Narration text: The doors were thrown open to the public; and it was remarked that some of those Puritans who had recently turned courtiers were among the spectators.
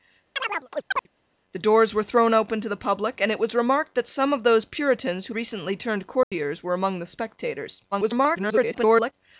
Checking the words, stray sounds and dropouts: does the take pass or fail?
fail